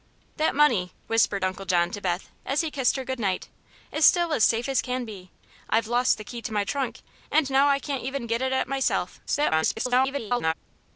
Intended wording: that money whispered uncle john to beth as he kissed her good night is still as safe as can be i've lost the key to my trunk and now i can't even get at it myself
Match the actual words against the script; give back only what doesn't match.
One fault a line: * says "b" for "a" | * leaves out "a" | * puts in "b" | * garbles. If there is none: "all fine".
* garbles